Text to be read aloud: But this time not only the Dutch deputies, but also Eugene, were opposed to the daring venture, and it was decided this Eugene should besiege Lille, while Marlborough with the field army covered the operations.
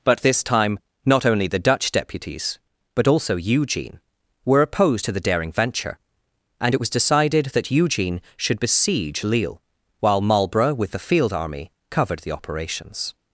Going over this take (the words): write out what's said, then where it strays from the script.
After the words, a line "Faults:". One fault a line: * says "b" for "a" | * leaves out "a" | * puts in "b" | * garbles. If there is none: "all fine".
But this time not only the Dutch deputies, but also Eugene, were opposed to the daring venture, and it was decided that Eugene should besiege Lille, while Marlborough with the field army covered the operations.
Faults:
* says "that" for "this"